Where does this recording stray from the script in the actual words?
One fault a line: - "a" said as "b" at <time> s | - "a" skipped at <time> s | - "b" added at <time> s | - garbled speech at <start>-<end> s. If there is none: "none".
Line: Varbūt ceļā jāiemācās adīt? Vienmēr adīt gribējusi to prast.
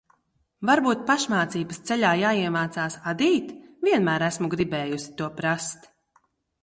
- "pašmācības" added at 1.1 s
- "adīt" said as "esmu" at 4.3 s